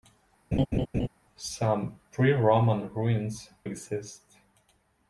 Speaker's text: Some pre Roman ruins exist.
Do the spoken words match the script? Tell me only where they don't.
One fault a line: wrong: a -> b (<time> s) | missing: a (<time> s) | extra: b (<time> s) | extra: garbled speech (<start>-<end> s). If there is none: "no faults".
no faults